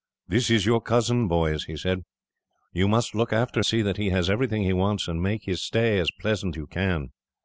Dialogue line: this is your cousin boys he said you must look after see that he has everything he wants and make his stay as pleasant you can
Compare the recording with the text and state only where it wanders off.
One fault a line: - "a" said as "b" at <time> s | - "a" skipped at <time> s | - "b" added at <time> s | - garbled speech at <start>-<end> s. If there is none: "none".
none